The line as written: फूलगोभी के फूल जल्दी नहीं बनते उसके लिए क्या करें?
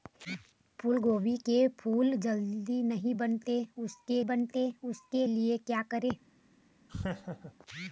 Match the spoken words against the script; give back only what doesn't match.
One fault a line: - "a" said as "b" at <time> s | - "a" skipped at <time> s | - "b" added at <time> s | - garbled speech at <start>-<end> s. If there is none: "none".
- "बनते उसके" added at 4.3 s